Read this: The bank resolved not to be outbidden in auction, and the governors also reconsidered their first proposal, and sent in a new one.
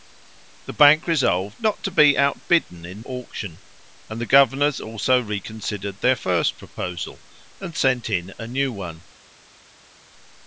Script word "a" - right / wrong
right